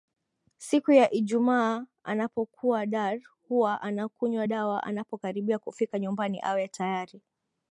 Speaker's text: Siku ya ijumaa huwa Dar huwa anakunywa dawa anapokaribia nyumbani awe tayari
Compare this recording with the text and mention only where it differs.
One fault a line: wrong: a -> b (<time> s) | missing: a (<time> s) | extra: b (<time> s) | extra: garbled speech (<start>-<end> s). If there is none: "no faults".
wrong: huwa -> anapokuwa (2.0 s)
extra: kufika (5.6 s)